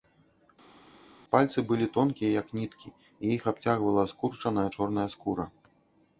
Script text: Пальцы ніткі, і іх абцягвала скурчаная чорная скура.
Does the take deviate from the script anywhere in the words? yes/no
yes